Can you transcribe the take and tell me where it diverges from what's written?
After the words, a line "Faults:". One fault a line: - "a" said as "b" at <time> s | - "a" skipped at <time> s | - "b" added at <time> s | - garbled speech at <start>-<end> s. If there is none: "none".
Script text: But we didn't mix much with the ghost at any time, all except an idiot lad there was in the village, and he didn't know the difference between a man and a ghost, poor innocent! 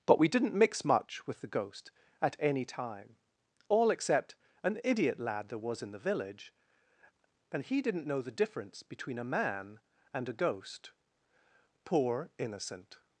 But we didn't mix much with the ghost at any time, all except an idiot lad there was in the village, and he didn't know the difference between a man and a ghost, poor innocent!
Faults:
none